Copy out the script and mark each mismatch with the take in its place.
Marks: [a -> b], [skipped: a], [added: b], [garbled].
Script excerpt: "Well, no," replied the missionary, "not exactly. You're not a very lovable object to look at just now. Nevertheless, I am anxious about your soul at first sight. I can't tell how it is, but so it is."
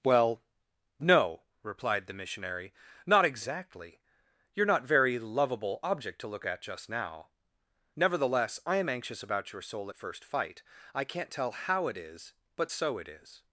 "Well, no," replied the missionary, "not exactly. You're not [skipped: a] very lovable object to look at just now. Nevertheless, I am anxious about your soul at first [sight. -> fight] I can't tell how it is, but so it is."